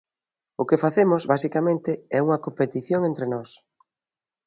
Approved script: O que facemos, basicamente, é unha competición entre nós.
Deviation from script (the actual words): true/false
false